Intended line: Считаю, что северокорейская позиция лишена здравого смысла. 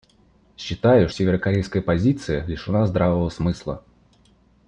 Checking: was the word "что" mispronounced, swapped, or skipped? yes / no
yes